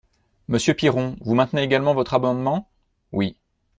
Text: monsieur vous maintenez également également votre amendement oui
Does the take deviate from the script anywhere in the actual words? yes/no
yes